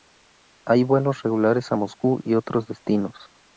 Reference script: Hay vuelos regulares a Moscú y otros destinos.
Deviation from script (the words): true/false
false